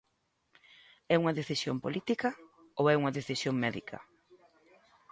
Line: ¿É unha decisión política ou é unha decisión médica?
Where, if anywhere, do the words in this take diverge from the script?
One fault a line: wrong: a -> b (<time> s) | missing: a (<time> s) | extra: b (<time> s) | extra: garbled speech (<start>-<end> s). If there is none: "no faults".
no faults